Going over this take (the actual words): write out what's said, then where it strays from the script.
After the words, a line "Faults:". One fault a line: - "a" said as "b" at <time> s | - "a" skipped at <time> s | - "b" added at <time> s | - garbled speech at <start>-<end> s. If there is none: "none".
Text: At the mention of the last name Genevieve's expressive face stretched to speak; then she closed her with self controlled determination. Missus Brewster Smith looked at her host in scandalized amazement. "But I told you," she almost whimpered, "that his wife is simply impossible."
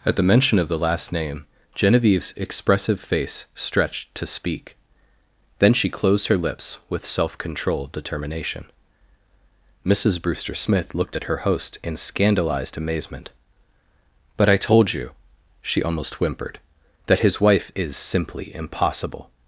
At the mention of the last name Genevieve's expressive face stretched to speak; then she closed her lips with self controlled determination. Missus Brewster Smith looked at her host in scandalized amazement. "But I told you," she almost whimpered, "that his wife is simply impossible."
Faults:
- "lips" added at 6.4 s